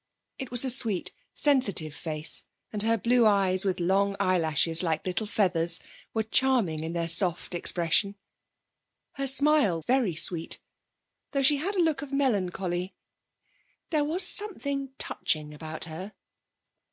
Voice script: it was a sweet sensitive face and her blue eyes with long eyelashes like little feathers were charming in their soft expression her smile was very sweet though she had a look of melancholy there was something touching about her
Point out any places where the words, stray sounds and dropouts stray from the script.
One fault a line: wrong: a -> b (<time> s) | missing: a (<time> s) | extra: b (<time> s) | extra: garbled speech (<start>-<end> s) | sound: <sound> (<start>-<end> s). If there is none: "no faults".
missing: was (9.8 s)